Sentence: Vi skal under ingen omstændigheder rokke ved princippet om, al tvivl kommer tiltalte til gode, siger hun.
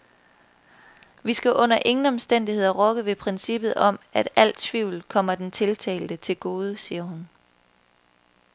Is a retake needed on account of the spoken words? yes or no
yes